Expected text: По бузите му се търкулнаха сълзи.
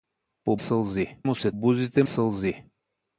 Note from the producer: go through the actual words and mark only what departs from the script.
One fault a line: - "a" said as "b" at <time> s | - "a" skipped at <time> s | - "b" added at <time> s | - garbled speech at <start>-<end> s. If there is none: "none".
- "бузите" said as "сълзи" at 0.6 s
- "търкулнаха" said as "бузите" at 1.5 s